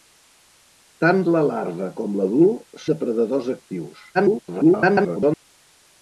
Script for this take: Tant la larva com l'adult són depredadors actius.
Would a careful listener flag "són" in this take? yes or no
yes